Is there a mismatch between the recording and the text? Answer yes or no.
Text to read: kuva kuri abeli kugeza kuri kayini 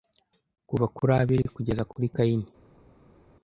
no